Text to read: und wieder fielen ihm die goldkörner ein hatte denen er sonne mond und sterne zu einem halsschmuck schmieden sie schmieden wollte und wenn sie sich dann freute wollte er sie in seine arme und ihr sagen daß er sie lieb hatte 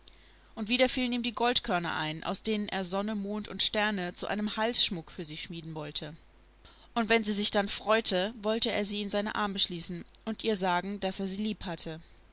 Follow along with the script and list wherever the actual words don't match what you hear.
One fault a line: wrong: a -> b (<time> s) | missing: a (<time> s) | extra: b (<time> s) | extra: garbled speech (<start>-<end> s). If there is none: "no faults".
wrong: hatte -> aus (2.2 s)
wrong: schmieden -> für (5.1 s)
extra: schließen (9.6 s)